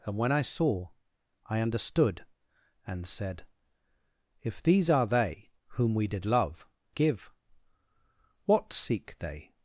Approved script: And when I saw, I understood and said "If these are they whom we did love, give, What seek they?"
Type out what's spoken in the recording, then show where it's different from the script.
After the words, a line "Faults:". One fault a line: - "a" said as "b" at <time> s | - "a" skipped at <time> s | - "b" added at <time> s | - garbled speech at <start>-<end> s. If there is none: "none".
And when I saw, I understood and said "If these are they whom we did love, give, What seek they?"
Faults:
none